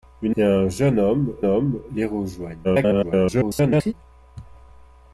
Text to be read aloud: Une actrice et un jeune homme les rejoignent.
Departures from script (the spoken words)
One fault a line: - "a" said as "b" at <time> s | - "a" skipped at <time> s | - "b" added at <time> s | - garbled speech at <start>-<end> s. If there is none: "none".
- "actrice" skipped at 0.3 s
- "homme" added at 1.5 s
- garbled speech at 2.6-3.9 s